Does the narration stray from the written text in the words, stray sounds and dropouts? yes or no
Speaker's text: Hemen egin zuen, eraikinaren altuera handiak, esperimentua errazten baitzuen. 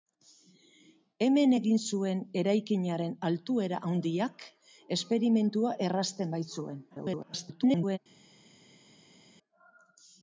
yes